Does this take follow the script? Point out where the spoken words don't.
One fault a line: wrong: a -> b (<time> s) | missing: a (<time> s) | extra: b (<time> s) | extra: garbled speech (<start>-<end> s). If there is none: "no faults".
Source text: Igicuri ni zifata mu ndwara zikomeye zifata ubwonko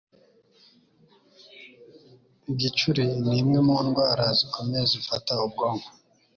wrong: zifata -> imwe (3.4 s)